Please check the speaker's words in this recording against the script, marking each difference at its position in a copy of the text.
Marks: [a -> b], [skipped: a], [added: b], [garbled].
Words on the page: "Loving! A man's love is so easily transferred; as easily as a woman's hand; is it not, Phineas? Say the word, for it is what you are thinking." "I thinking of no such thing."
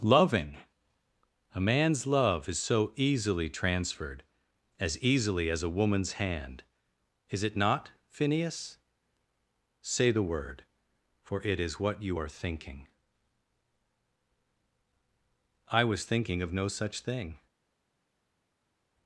"Loving! A man's love is so easily transferred; as easily as a woman's hand; is it not, Phineas? Say the word, for it is what you are thinking." "I [added: was] thinking of no such thing."